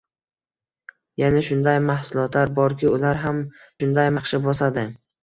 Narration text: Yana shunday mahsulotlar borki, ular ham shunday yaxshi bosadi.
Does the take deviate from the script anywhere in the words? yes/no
no